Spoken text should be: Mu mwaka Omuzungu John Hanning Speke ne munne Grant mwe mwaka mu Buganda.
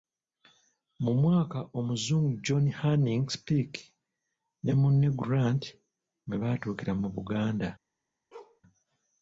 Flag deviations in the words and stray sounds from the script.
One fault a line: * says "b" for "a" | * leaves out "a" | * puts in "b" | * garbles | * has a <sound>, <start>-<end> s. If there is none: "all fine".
* says "baatuukira" for "mwaka"
* has a bark, 8.3-8.6 s